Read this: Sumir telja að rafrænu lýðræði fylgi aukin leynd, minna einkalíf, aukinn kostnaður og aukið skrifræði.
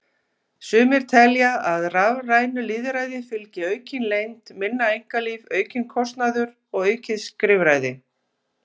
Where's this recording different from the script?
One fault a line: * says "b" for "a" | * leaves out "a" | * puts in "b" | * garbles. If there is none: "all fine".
all fine